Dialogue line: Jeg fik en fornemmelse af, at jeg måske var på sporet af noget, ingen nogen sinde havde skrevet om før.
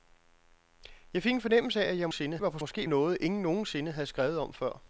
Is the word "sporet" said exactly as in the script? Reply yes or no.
no